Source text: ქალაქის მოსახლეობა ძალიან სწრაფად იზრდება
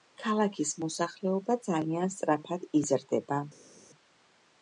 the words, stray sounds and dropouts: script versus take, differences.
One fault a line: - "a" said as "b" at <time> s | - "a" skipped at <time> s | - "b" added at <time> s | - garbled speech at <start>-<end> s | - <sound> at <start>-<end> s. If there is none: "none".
none